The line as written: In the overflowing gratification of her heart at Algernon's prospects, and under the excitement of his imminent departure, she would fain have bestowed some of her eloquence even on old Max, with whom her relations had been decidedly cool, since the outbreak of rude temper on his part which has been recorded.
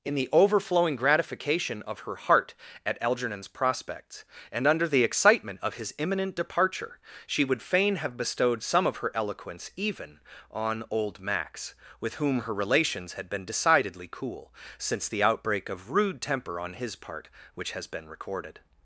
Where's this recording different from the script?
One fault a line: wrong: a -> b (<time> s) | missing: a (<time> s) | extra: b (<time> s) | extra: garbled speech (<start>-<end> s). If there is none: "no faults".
no faults